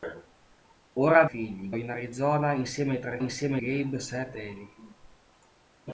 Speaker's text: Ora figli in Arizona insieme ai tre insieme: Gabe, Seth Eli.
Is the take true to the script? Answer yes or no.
yes